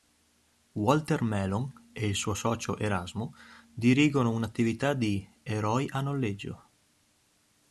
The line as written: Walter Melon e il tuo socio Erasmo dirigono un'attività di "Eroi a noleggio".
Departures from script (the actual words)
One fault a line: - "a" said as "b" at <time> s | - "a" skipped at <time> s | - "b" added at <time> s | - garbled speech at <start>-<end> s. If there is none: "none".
- "tuo" said as "suo" at 2.2 s